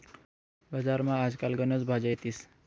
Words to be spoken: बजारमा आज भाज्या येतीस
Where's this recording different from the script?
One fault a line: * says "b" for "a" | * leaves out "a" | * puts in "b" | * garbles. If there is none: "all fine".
* puts in "काल गनच"